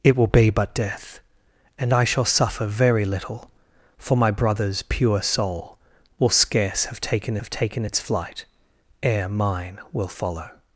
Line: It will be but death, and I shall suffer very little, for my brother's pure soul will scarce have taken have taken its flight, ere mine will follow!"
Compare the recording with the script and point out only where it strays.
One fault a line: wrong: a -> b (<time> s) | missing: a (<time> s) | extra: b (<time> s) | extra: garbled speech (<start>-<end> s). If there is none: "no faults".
no faults